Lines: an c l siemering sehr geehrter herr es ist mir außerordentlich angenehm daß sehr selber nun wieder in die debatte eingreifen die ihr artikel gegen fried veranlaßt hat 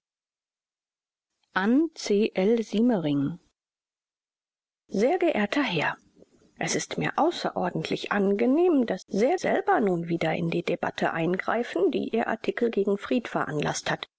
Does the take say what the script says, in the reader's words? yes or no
yes